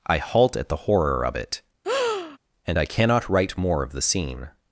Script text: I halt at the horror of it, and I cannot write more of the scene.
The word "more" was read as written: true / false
true